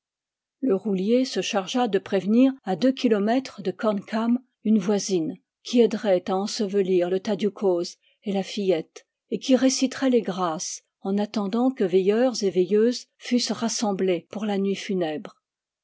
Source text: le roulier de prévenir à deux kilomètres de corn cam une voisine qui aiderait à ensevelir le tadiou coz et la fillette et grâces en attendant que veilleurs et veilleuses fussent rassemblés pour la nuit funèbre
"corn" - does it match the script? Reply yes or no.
yes